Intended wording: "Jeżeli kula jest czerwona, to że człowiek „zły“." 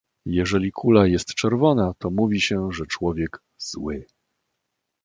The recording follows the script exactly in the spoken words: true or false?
false